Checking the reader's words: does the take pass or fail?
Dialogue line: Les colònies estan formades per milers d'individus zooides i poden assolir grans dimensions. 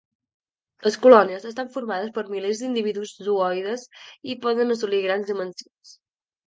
pass